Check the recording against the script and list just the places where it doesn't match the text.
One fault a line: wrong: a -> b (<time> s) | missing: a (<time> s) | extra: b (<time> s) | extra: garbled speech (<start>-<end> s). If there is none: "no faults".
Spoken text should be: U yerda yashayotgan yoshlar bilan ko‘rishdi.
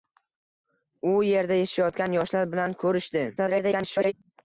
extra: garbled speech (3.4-4.1 s)